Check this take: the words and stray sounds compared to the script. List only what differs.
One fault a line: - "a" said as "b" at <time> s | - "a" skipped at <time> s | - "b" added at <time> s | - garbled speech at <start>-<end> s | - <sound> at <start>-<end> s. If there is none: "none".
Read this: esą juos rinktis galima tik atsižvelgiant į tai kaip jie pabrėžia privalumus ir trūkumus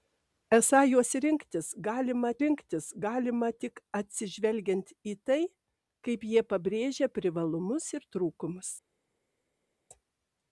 - "rinktis galima" added at 2.4 s